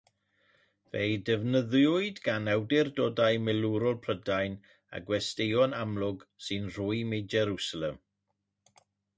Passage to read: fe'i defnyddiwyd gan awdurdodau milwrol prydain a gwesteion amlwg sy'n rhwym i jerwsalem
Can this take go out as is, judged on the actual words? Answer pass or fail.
pass